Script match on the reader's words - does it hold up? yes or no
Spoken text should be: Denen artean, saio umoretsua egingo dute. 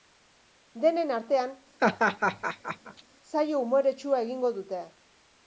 yes